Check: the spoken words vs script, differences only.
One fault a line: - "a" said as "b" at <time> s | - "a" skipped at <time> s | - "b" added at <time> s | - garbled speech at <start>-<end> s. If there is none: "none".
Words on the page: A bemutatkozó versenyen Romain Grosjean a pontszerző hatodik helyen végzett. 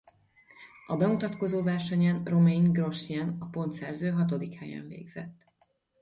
none